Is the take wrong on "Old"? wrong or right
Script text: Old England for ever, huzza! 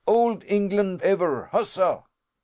right